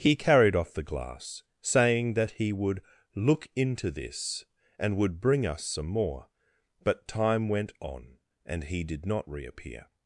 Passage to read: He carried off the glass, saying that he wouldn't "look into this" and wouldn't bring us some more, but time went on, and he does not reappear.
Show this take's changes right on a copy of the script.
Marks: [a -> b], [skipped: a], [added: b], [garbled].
He carried off the glass, saying that he [wouldn't -> would] "look into this" and [wouldn't -> would] bring us some more, but time went on, and he [does -> did] not reappear.